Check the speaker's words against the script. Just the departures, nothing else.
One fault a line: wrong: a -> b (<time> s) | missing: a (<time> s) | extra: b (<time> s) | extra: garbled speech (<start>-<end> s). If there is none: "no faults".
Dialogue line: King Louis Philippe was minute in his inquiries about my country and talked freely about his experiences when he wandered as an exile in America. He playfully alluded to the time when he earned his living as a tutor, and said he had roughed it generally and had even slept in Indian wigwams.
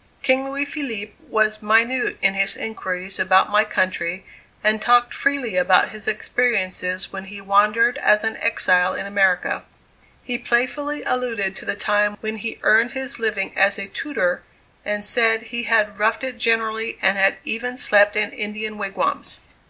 no faults